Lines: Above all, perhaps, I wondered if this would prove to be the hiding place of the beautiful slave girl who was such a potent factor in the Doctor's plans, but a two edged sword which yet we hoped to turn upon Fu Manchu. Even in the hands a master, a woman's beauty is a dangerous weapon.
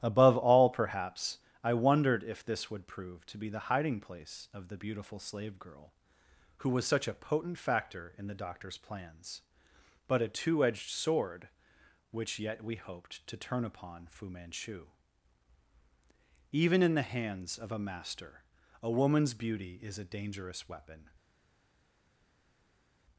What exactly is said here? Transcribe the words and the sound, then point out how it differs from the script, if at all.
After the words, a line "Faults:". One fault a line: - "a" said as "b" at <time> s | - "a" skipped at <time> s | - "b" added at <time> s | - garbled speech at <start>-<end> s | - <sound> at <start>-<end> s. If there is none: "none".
Above all, perhaps, I wondered if this would prove to be the hiding place of the beautiful slave girl who was such a potent factor in the Doctor's plans, but a two edged sword which yet we hoped to turn upon Fu Manchu. Even in the hands of a master, a woman's beauty is a dangerous weapon.
Faults:
- "of" added at 17.6 s